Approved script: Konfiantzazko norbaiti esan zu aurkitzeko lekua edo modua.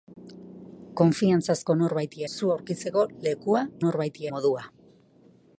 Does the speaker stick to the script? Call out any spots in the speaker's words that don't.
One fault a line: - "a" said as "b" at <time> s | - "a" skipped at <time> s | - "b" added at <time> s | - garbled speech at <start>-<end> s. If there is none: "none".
- "esan" skipped at 2.2 s
- "edo" said as "norbaiti" at 3.8 s